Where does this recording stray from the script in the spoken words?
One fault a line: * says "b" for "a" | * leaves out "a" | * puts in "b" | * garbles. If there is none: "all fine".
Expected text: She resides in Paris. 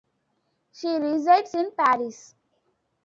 all fine